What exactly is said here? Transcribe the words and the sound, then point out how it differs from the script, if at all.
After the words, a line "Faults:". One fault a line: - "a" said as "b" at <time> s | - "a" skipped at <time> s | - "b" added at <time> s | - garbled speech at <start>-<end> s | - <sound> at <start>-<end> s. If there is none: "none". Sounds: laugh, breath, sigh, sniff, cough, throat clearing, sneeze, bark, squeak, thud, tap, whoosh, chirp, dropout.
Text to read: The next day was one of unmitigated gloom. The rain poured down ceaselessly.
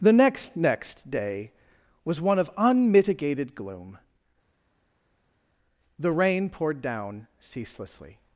The next next day was one of unmitigated gloom. The rain poured down ceaselessly.
Faults:
- "next" added at 0.6 s